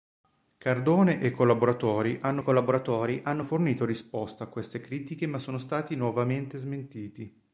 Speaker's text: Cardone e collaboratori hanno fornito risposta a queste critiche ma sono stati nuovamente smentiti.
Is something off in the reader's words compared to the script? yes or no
yes